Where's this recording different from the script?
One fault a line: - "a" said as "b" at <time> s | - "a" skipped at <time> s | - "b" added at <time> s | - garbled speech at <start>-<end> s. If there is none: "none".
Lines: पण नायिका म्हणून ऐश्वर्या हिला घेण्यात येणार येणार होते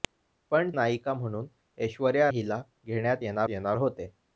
none